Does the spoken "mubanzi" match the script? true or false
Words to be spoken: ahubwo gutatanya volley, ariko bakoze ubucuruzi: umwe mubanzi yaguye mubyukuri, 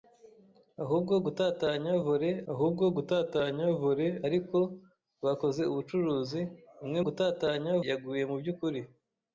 false